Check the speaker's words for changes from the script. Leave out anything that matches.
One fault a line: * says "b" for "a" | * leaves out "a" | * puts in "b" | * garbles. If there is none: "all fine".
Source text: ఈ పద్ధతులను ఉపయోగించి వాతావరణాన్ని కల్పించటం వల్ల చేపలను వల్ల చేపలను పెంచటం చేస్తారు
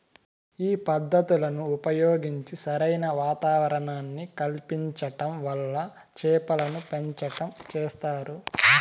* puts in "సరైన"
* leaves out "వల్ల చేపలను"